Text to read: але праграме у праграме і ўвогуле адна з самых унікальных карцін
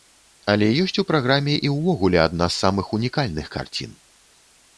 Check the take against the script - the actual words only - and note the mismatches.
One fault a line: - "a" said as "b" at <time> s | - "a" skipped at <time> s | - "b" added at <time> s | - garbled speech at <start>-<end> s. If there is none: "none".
- "праграме" said as "ёсць" at 0.8 s